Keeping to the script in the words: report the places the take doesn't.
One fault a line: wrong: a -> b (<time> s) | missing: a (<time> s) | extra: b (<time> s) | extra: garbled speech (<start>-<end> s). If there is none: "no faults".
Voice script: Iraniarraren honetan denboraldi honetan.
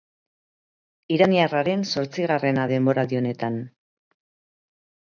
wrong: honetan -> zortzigarrena (1.9 s)